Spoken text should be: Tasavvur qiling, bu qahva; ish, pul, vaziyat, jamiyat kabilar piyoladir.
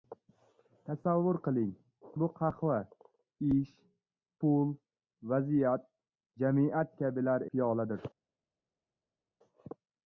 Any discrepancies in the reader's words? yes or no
no